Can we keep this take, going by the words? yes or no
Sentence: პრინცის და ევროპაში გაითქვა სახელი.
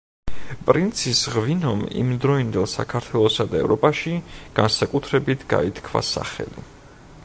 no